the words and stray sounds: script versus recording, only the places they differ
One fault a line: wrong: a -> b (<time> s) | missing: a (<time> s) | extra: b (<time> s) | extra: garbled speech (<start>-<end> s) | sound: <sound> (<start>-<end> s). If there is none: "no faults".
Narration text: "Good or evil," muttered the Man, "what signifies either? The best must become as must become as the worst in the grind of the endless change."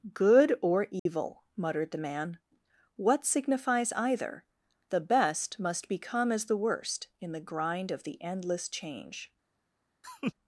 sound: dropout (1.0-1.1 s)
missing: must become as (6.5 s)
sound: laugh (10.0-10.3 s)